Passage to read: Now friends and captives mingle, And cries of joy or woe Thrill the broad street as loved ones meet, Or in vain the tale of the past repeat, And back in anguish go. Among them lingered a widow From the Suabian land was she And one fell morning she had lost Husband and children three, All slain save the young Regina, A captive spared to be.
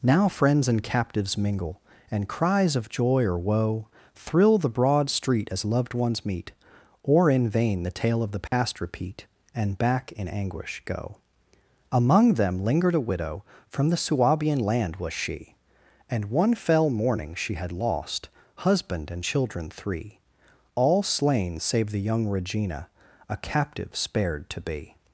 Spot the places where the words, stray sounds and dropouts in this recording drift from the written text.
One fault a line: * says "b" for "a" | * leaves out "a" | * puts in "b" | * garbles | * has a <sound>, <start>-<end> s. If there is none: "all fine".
* has a dropout, 8.5-8.5 s